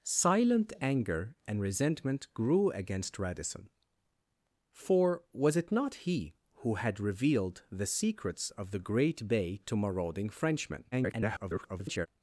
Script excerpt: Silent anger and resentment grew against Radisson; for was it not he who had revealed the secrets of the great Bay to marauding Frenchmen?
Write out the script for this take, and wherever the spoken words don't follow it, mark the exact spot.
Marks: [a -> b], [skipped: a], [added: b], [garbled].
Silent anger and resentment grew against Radisson; for was it not he who had revealed the secrets of the great Bay to marauding Frenchmen? [garbled]